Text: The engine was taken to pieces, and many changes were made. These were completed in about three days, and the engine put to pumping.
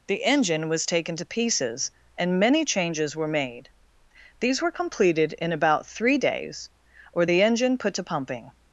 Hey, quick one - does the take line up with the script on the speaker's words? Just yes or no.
no